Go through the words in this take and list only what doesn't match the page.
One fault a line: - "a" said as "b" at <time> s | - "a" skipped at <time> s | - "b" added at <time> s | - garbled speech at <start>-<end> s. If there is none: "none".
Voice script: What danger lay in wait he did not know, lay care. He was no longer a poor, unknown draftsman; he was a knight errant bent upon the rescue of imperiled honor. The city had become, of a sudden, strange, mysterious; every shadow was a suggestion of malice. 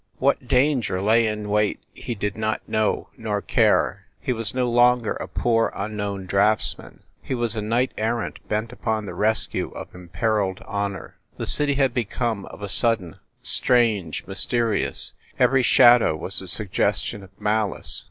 - "lay" said as "nor" at 3.2 s